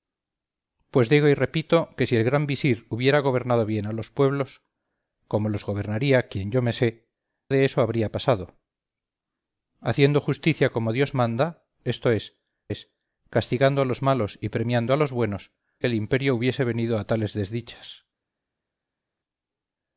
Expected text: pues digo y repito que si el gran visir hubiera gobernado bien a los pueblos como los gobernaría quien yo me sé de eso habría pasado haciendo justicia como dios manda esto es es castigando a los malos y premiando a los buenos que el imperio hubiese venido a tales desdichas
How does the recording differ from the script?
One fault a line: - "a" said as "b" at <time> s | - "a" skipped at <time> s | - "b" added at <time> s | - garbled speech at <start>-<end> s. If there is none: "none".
none